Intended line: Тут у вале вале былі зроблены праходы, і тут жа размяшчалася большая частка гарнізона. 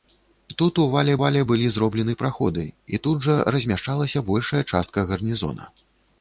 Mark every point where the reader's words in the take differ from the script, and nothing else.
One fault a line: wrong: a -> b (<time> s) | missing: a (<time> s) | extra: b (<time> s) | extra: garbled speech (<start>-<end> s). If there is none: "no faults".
no faults